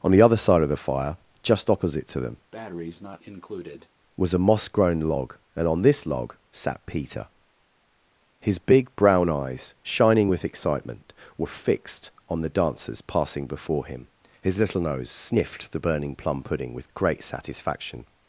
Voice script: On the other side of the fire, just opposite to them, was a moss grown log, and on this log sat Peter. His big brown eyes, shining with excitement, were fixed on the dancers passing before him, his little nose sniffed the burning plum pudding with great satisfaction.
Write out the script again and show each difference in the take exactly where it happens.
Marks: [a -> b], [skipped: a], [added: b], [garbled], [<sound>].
On the other side of the fire, just opposite to them, [breath] was a moss grown log, and on this log sat Peter. His big brown eyes, shining with excitement, were fixed on the dancers passing before him, his little nose sniffed the burning plum pudding with great satisfaction.